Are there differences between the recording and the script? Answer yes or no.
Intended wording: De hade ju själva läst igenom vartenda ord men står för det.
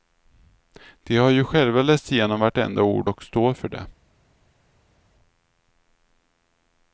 yes